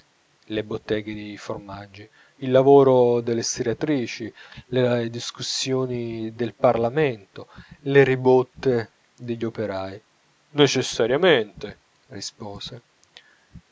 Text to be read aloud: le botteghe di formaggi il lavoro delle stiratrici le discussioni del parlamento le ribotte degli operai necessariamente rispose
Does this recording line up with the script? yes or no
yes